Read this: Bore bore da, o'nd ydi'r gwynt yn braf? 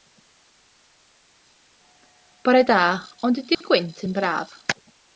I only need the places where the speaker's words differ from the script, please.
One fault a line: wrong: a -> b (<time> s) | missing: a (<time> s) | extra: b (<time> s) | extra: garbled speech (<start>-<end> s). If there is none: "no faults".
missing: bore (2.6 s)